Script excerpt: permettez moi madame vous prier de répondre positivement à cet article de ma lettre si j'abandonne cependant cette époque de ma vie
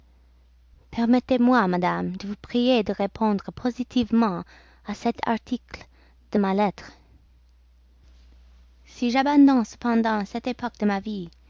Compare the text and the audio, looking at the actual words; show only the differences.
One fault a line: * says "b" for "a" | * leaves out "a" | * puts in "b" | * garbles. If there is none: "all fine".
* puts in "de"